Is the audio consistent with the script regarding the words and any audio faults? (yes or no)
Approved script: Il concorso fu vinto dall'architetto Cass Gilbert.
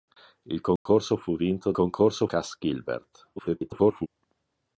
no